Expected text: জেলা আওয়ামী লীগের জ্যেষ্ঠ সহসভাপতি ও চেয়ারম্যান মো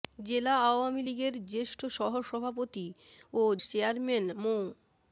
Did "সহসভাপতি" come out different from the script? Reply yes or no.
no